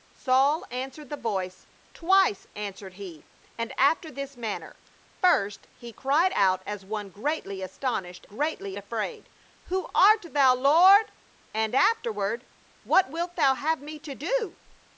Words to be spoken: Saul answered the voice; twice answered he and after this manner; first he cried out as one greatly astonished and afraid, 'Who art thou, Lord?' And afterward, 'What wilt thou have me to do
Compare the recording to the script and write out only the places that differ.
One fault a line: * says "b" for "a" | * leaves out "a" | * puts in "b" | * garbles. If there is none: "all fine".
* says "greatly" for "and"